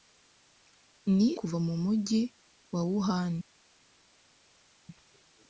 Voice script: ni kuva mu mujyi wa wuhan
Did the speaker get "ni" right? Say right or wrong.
right